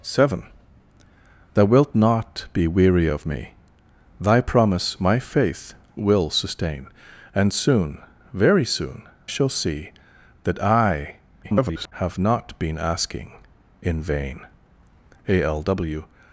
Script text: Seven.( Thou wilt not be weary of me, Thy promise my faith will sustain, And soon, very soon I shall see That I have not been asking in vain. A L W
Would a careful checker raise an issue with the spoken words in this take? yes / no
yes